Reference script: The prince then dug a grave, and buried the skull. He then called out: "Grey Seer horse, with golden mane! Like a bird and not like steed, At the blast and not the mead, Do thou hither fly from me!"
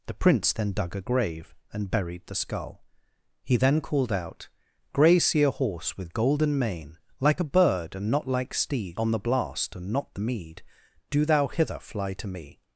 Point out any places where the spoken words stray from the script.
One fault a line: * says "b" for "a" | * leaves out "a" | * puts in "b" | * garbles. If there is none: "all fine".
* says "On" for "At"
* says "to" for "from"